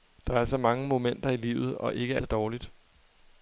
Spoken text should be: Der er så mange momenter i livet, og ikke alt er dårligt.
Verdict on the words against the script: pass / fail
fail